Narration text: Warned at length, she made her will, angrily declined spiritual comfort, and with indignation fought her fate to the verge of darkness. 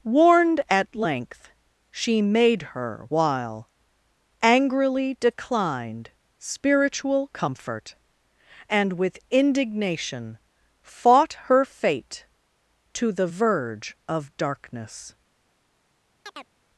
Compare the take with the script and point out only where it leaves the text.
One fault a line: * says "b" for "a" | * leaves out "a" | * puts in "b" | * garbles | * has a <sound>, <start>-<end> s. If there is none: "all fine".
* says "while" for "will"
* has a chirp, 16.3-16.5 s